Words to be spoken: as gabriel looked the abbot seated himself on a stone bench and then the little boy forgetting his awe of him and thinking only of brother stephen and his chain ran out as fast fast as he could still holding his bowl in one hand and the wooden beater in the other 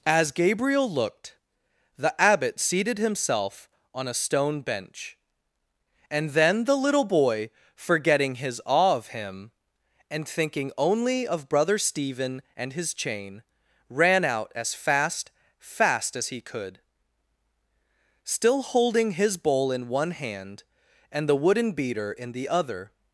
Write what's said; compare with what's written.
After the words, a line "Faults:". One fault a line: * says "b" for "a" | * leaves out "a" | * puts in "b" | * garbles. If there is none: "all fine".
as gabriel looked the abbot seated himself on a stone bench and then the little boy forgetting his awe of him and thinking only of brother stephen and his chain ran out as fast fast as he could still holding his bowl in one hand and the wooden beater in the other
Faults:
all fine